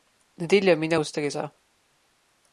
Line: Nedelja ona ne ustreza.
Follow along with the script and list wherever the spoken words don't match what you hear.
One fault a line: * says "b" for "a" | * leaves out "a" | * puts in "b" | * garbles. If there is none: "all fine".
* says "mi" for "ona"